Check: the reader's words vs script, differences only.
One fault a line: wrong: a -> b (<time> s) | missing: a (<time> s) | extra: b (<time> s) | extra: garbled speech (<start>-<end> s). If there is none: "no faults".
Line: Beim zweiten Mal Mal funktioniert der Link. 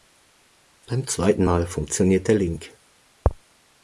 missing: Mal (1.7 s)